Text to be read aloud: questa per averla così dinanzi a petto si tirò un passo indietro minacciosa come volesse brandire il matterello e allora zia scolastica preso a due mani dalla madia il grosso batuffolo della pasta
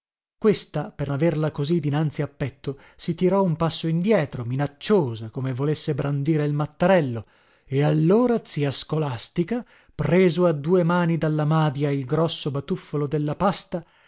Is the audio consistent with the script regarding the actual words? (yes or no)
yes